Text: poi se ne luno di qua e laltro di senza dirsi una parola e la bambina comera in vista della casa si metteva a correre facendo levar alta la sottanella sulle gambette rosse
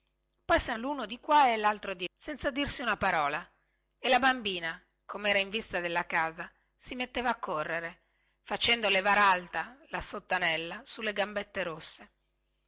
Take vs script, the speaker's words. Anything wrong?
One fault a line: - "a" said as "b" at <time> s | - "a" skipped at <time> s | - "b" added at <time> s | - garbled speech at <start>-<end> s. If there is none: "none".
none